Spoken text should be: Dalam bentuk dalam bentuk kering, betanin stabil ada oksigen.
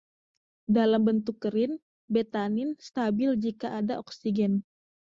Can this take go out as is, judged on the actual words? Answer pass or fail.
fail